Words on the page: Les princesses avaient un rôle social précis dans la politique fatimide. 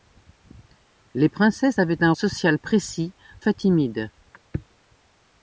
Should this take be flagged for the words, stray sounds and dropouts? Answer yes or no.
yes